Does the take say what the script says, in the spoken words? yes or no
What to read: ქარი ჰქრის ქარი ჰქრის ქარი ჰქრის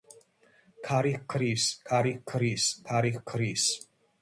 yes